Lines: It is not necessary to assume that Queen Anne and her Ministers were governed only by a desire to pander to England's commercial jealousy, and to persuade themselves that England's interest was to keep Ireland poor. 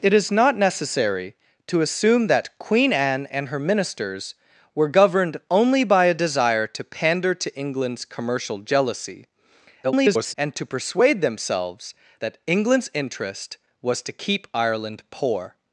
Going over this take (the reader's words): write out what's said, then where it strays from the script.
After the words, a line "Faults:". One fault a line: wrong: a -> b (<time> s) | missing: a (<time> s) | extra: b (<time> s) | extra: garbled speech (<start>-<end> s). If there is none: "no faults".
It is not necessary to assume that Queen Anne and her Ministers were governed only by a desire to pander to England's commercial jealousy, [garbled] and to persuade themselves that England's interest was to keep Ireland poor.
Faults:
extra: garbled speech (9.8-10.3 s)